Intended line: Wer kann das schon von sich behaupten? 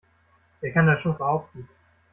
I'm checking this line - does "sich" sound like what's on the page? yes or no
no